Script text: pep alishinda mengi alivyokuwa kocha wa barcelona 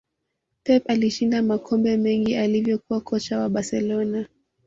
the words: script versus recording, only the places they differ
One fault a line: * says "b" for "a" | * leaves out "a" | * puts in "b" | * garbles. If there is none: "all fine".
* puts in "makombe"